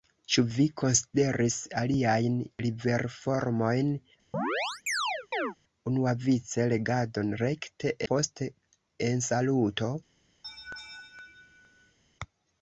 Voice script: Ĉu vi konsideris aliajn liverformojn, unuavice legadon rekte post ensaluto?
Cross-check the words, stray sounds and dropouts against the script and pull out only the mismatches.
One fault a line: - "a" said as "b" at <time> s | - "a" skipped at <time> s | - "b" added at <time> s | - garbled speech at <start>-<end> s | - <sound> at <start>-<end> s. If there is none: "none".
- chirp at 4.3-5.6 s
- laugh at 10.4-12.0 s